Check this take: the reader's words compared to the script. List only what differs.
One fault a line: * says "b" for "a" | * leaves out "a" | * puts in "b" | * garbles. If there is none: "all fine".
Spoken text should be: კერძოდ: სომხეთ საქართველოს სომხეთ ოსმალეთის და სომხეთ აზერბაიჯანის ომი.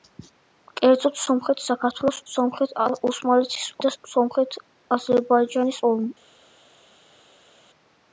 all fine